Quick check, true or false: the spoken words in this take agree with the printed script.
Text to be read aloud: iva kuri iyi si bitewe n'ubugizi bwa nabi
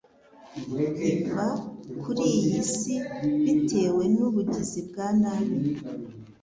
true